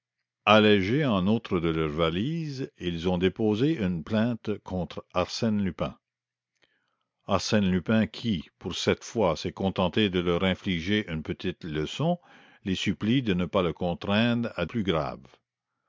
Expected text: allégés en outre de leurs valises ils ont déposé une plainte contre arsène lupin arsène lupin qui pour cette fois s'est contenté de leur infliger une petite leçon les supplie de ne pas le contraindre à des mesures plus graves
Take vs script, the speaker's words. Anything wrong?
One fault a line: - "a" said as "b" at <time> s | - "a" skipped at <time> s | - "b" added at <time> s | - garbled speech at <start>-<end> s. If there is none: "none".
- "des mesures" skipped at 14.6 s